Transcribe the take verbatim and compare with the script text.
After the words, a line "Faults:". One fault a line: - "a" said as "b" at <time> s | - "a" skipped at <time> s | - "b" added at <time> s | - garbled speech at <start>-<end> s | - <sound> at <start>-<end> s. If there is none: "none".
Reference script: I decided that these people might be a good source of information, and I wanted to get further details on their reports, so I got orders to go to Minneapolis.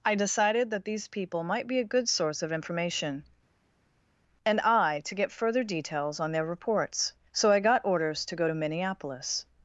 I decided that these people might be a good source of information, and I to get further details on their reports, so I got orders to go to Minneapolis.
Faults:
- "wanted" skipped at 5.0 s